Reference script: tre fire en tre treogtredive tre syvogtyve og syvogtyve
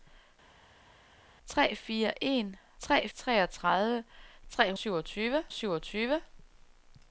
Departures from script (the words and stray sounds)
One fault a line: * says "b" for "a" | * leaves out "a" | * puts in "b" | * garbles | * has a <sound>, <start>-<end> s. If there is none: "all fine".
all fine